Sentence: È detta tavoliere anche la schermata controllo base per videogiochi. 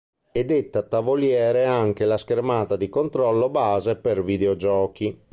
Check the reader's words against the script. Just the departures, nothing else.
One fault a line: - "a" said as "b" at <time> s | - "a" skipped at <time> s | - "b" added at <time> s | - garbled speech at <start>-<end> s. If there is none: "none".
- "di" added at 2.8 s